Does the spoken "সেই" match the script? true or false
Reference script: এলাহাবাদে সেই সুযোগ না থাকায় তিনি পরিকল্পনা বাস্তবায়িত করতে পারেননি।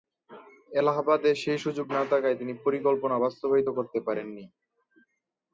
true